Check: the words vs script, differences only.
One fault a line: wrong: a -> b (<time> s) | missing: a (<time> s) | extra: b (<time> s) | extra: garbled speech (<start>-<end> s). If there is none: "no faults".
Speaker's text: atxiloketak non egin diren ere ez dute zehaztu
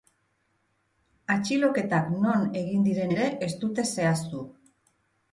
no faults